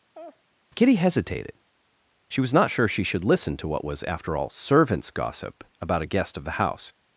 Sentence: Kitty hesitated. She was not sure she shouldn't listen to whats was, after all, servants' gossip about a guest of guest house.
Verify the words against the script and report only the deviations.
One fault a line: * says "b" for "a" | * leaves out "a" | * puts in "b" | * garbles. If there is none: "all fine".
* says "should" for "shouldn't"
* says "what" for "whats"
* says "the" for "guest"